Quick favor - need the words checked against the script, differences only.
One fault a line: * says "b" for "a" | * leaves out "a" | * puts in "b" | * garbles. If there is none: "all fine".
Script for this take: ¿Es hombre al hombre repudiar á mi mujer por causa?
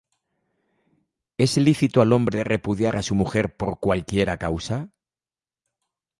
* says "lícito" for "hombre"
* says "su" for "mi"
* puts in "cualquiera"